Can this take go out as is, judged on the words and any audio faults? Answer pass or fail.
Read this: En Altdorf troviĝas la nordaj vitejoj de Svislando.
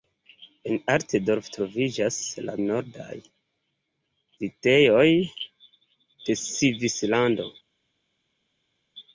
pass